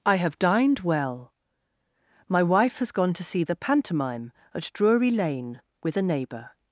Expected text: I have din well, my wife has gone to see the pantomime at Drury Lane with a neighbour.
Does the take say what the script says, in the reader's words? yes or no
no